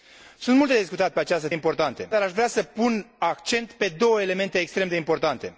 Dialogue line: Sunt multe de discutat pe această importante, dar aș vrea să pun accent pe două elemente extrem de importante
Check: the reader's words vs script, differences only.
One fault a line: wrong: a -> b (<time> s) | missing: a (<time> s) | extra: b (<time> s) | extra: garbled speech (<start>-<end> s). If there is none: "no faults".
no faults